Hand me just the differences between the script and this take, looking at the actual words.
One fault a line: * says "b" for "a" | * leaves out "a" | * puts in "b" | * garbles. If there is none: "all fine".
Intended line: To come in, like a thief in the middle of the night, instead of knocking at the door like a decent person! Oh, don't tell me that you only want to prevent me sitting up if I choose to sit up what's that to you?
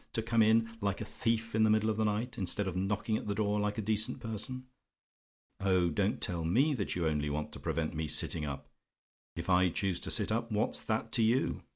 all fine